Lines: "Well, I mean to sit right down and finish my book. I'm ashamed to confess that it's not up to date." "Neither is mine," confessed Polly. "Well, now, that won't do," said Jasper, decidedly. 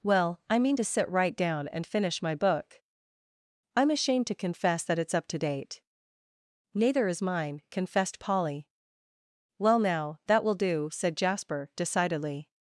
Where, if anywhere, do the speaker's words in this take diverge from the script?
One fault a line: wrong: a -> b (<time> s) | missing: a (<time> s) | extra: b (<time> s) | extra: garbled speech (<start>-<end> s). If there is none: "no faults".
missing: not (5.1 s)
wrong: won't -> will (10.4 s)